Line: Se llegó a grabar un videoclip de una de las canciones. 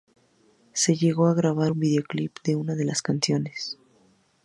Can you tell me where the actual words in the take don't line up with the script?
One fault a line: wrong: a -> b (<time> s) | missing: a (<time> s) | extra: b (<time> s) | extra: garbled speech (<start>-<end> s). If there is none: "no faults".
no faults